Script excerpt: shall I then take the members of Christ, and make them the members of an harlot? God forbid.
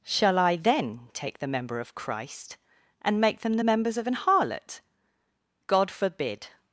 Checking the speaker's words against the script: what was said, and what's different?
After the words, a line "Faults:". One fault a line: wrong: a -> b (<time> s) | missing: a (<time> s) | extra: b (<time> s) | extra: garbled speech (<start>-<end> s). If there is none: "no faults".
shall I then take the member of Christ, and make them the members of an harlot? God forbid.
Faults:
wrong: members -> member (1.5 s)